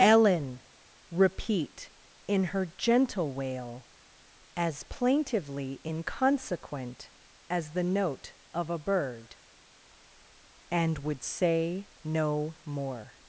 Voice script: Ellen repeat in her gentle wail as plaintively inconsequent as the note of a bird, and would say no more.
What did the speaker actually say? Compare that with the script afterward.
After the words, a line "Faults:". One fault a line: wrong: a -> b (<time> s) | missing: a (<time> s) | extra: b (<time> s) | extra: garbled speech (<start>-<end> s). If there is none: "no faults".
Ellen repeat in her gentle wail as plaintively inconsequent as the note of a bird, and would say no more.
Faults:
no faults